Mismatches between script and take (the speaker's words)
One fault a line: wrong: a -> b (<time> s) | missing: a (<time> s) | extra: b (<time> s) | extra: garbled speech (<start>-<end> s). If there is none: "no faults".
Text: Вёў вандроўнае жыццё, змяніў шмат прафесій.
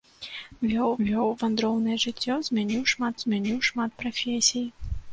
extra: вёў (1.1 s)
extra: змяніў шмат (3.2 s)